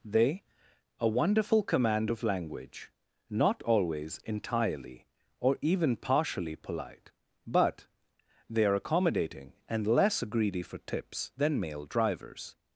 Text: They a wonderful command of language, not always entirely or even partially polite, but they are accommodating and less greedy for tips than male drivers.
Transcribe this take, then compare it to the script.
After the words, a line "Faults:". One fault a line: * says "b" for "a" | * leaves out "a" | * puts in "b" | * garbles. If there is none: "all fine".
They a wonderful command of language, not always entirely or even partially polite, but they are accommodating and less greedy for tips than male drivers.
Faults:
all fine